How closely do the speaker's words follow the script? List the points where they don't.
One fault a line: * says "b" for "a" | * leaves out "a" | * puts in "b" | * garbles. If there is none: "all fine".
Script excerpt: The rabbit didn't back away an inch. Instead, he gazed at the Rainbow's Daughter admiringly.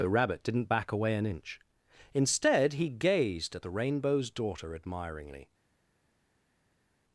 all fine